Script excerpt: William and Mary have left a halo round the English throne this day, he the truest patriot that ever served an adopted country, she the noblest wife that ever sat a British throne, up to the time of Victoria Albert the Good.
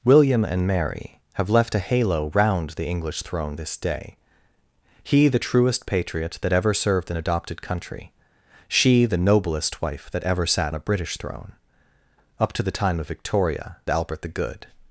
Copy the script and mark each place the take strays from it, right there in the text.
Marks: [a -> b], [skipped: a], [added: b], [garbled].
William and Mary have left a halo round the English throne this day, he the truest patriot that ever served an adopted country, she the noblest wife that ever sat a British throne, up to the time of Victoria Albert the Good.